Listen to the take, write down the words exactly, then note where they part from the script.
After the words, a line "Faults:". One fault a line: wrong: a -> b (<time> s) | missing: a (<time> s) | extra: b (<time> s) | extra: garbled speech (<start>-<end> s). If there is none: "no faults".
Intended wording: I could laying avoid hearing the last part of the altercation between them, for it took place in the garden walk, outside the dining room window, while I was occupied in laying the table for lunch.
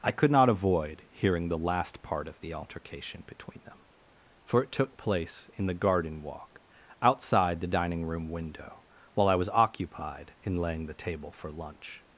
I could not avoid hearing the last part of the altercation between them, for it took place in the garden walk, outside the dining room window, while I was occupied in laying the table for lunch.
Faults:
wrong: laying -> not (0.3 s)